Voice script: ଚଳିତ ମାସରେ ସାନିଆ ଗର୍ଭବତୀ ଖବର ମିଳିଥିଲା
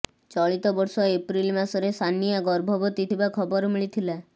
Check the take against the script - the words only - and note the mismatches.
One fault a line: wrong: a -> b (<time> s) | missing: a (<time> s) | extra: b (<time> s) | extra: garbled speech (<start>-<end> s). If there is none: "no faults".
extra: ବର୍ଷ ଏପ୍ରିଲ (0.8 s)
extra: ଥିବା (3.1 s)